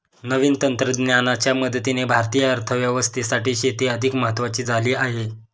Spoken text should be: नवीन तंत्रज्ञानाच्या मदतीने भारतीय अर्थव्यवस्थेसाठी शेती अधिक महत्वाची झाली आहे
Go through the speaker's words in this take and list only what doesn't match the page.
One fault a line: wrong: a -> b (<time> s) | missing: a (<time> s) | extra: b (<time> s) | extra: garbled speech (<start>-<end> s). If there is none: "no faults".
no faults